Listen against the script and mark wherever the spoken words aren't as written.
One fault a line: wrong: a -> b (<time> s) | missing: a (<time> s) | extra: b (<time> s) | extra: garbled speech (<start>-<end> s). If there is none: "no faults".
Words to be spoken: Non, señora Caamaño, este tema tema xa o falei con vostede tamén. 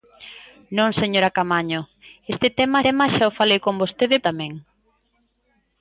no faults